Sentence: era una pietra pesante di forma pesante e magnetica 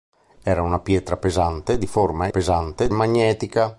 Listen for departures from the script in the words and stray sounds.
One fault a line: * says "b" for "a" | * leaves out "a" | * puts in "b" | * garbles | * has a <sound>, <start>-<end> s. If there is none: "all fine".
all fine